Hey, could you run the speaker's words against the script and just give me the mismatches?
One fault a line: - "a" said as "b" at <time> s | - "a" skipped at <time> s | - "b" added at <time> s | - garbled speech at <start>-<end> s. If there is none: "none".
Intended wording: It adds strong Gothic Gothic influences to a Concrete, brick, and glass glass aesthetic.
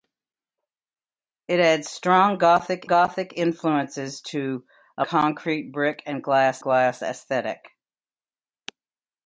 none